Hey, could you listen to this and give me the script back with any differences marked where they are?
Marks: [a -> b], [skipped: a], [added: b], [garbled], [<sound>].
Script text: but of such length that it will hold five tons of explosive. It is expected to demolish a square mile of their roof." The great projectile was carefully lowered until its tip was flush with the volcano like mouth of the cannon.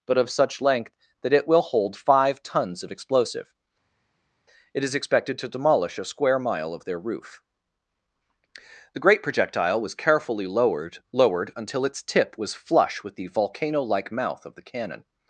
but of such length that it will hold five tons of explosive. It is expected to demolish a square mile of their roof." The great projectile was carefully lowered [added: lowered] until its tip was flush with the volcano like mouth of the cannon.